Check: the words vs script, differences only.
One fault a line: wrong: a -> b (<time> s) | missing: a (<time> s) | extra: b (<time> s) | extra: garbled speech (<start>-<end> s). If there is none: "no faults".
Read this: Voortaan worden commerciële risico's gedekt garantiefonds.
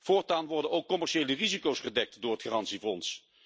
extra: ook (0.7 s)
extra: door het (2.2 s)